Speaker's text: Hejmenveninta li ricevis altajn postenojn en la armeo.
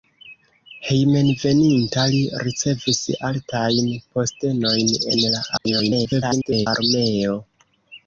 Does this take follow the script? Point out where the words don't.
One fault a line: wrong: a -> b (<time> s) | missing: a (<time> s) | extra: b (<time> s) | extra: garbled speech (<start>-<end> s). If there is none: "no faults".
extra: garbled speech (5.6-6.7 s)